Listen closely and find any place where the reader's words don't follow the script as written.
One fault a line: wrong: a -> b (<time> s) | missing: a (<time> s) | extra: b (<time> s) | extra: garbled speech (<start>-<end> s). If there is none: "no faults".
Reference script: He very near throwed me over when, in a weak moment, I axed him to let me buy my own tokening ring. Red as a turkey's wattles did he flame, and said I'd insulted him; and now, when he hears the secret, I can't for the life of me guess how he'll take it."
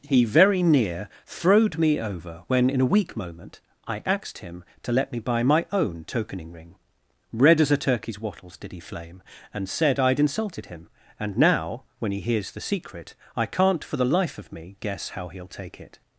no faults